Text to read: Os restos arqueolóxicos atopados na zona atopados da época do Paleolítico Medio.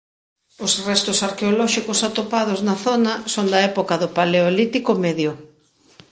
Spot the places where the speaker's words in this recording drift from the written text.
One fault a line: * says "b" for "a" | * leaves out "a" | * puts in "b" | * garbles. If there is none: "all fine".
* says "son" for "atopados"